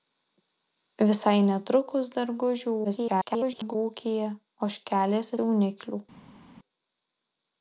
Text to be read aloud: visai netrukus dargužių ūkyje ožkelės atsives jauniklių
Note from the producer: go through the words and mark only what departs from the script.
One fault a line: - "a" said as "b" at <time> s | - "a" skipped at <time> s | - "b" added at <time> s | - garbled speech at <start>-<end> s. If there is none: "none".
- garbled speech at 2.8-3.8 s
- "atsives" skipped at 5.3 s